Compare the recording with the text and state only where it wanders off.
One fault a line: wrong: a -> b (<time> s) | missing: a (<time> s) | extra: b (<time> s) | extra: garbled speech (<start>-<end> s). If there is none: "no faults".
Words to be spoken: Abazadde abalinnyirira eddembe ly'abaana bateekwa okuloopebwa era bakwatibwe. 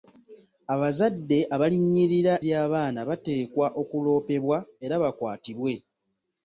missing: eddembe (2.3 s)